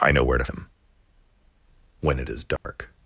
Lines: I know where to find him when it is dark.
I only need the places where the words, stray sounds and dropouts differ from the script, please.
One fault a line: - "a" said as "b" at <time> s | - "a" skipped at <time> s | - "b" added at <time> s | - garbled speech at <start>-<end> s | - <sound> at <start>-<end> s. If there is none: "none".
- "find" skipped at 0.5 s
- dropout at 2.6-2.6 s